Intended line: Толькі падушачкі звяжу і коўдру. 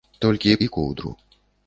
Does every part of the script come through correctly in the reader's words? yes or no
no